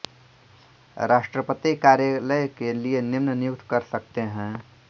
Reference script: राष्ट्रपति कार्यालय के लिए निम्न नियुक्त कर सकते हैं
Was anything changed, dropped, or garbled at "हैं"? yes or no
no